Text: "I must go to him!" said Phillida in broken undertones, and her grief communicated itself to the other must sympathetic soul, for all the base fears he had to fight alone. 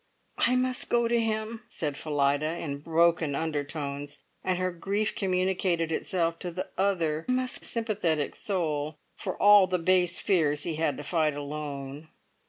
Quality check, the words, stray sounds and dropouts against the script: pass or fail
pass